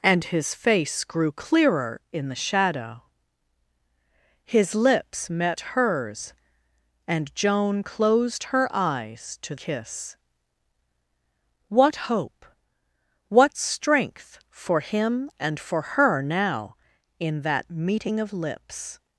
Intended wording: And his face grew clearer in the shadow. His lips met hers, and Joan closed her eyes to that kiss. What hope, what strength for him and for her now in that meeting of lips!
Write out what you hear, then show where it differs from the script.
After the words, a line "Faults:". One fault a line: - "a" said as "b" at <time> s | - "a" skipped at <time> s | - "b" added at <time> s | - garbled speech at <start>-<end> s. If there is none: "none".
And his face grew clearer in the shadow. His lips met hers, and Joan closed her eyes to kiss. What hope, what strength for him and for her now in that meeting of lips!
Faults:
- "that" skipped at 9.6 s